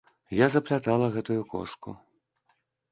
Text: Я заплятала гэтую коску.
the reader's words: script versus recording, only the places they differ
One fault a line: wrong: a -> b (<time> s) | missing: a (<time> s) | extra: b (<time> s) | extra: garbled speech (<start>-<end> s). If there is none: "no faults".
no faults